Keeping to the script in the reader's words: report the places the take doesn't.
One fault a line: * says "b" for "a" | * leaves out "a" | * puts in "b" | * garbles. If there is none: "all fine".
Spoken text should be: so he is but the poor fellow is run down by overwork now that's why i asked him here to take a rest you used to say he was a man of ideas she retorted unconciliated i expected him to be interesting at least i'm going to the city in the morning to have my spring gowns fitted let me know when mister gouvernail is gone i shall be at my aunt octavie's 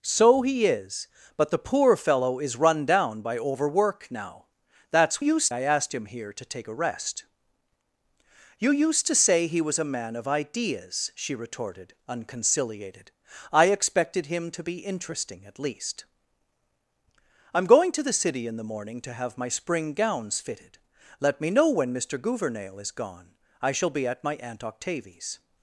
* says "used" for "why"